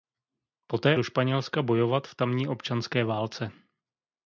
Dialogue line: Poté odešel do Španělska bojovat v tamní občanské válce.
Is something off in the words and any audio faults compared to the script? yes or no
yes